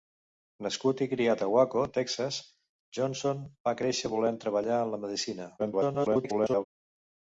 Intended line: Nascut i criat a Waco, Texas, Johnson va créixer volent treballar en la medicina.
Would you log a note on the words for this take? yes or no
yes